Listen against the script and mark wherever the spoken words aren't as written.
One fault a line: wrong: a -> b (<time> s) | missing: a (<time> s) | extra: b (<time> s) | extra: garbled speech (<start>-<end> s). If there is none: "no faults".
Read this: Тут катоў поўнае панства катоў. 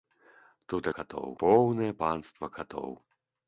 no faults